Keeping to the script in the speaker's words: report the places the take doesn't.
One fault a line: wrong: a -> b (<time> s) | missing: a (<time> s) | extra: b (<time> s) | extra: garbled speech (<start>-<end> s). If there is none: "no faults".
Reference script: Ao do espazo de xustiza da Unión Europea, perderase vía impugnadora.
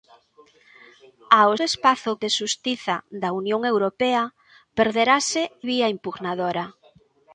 no faults